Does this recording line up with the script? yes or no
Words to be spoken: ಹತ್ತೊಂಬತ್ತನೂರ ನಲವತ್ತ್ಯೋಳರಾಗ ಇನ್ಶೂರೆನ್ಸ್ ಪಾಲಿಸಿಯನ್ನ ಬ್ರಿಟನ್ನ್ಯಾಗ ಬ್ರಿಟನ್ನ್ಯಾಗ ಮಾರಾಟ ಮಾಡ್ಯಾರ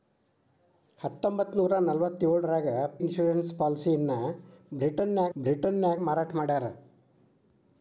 yes